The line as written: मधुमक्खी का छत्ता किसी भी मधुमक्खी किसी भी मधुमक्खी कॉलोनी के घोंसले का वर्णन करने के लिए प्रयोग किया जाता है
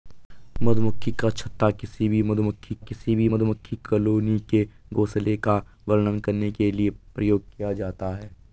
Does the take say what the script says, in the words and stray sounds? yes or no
yes